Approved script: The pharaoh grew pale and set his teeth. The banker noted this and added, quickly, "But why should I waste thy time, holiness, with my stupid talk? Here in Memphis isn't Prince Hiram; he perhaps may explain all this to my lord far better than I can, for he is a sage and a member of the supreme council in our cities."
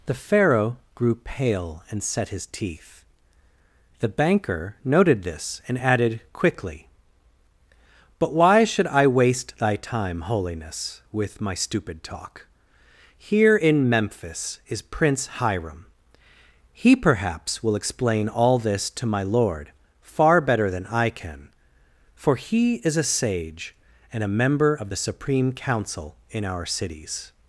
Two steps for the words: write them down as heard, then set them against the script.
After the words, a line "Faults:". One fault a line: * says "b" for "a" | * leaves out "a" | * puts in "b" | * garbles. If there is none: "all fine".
The pharaoh grew pale and set his teeth. The banker noted this and added, quickly, "But why should I waste thy time, holiness, with my stupid talk? Here in Memphis is Prince Hiram; he perhaps will explain all this to my lord far better than I can, for he is a sage and a member of the supreme council in our cities."
Faults:
* says "is" for "isn't"
* says "will" for "may"